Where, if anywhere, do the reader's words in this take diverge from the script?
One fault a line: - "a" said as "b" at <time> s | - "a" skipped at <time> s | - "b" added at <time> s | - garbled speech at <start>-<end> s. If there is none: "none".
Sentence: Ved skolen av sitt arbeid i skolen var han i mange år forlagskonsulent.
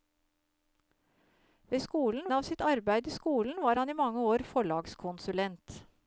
none